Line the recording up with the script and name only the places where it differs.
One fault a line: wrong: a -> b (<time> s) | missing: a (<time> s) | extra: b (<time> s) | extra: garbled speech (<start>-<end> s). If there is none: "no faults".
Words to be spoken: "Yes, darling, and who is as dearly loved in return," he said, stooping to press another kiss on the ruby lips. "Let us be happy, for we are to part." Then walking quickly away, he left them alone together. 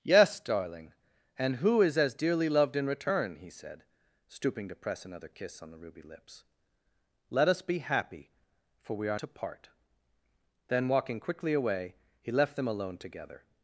no faults